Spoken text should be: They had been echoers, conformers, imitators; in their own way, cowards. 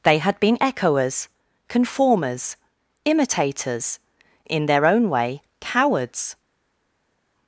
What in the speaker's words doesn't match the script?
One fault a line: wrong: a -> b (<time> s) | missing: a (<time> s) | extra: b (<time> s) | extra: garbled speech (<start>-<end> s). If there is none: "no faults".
no faults